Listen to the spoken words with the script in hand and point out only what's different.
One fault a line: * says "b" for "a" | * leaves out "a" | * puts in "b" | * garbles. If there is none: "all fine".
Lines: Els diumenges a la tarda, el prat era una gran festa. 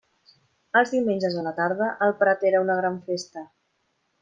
all fine